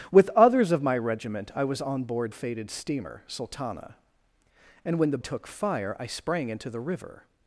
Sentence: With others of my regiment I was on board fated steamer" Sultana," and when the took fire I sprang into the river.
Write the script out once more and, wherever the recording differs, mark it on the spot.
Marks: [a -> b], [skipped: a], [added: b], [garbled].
With others of my regiment I was on board fated steamer" Sultana," and when the took fire I sprang into the river.